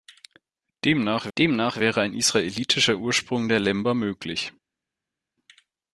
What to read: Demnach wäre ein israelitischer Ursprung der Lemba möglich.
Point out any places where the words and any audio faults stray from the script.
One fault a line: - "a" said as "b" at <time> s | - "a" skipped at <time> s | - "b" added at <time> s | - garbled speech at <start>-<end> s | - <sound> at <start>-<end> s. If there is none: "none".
- "demnach" added at 1.4 s